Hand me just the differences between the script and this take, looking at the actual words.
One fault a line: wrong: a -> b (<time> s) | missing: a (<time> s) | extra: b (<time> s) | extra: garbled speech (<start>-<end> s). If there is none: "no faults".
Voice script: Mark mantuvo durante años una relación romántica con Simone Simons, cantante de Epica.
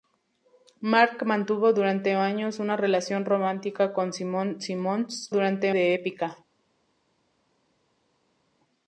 wrong: cantante -> durante (5.3 s)